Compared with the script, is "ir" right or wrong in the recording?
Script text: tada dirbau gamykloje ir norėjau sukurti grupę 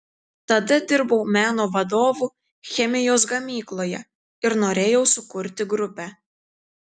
right